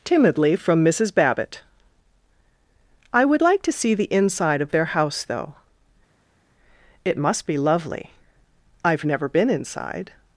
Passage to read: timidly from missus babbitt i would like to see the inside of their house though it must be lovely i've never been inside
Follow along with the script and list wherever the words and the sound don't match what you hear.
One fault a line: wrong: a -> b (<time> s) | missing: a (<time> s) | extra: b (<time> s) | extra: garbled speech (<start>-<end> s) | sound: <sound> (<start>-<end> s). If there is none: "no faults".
no faults